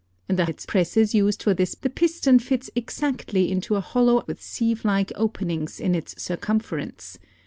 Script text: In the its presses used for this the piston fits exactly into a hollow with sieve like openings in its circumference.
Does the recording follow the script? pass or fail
pass